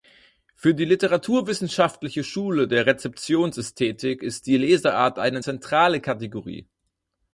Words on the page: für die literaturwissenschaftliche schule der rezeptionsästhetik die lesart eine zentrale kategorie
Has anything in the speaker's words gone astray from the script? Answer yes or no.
yes